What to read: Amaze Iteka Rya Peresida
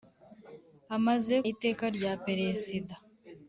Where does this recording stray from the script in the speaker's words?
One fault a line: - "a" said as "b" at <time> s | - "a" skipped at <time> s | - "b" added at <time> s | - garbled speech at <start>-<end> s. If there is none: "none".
none